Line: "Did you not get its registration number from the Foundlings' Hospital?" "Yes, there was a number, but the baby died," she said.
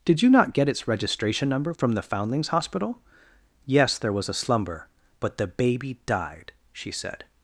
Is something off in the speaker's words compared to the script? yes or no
yes